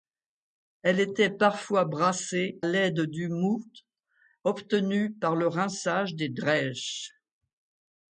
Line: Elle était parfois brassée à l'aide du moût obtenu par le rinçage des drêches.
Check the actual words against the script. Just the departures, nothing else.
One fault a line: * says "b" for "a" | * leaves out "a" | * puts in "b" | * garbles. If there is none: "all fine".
* leaves out "à"